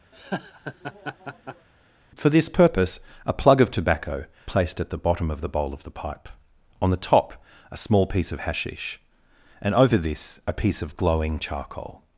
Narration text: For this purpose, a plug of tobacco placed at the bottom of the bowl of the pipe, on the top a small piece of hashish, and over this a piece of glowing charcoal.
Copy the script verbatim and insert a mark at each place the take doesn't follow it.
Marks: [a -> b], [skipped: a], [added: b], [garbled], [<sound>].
[laugh] For this purpose, a plug of tobacco placed at the bottom of the bowl of the pipe, on the top a small piece of hashish, and over this a piece of glowing charcoal.